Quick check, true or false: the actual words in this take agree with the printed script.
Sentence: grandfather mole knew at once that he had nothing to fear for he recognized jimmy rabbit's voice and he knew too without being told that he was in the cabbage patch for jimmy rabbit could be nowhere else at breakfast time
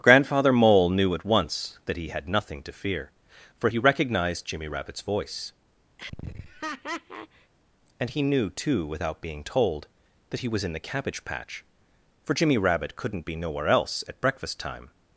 false